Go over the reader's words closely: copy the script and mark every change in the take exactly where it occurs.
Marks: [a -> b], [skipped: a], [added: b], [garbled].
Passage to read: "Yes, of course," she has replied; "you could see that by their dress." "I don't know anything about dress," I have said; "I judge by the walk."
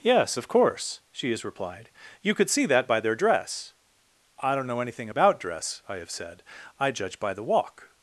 "Yes, of course," she has replied; "you could see that by their dress." "I don't know anything about dress," I have said; "I judge by the walk."